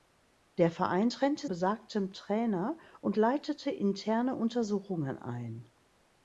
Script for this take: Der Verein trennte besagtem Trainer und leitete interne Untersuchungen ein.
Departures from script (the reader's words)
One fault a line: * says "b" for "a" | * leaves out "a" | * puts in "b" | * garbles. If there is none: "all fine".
all fine